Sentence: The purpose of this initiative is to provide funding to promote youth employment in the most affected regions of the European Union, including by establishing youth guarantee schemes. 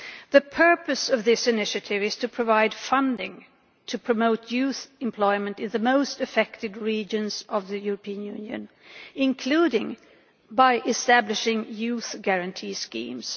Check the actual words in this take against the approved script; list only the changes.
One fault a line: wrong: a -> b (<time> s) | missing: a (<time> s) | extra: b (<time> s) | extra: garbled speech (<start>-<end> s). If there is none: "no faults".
no faults